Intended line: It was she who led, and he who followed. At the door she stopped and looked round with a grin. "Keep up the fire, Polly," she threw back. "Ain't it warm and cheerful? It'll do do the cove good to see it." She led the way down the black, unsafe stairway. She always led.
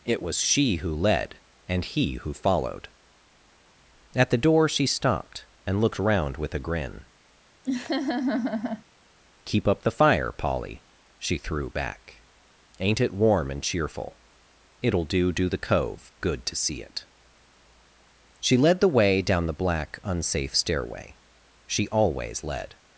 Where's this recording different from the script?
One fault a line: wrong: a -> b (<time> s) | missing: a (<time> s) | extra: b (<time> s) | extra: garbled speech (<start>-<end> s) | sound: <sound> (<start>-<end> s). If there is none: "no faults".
sound: laugh (7.6-8.8 s)